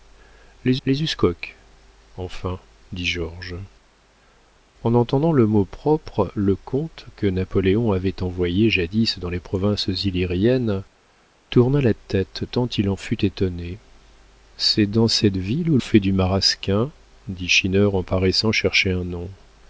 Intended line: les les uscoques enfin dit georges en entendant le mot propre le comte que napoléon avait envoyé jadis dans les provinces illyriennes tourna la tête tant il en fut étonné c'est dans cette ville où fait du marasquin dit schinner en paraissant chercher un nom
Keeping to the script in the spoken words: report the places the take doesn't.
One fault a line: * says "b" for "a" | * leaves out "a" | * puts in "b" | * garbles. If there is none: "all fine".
all fine